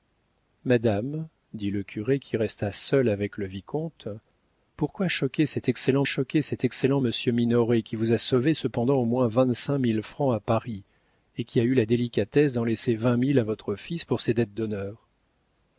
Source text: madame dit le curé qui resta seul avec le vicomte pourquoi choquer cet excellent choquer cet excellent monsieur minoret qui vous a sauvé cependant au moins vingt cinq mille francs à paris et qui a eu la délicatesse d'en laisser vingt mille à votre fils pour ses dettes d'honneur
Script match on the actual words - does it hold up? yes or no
yes